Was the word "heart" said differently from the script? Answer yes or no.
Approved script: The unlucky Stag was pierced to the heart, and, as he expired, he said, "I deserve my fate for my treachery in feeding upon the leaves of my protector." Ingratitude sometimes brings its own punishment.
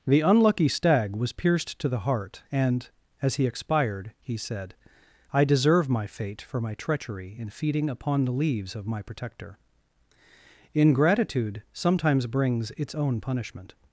no